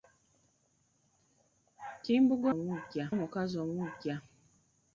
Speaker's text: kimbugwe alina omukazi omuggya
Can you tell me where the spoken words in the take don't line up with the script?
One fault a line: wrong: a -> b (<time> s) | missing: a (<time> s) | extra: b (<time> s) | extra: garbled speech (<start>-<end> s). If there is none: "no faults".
wrong: alina -> omuggya (2.5 s)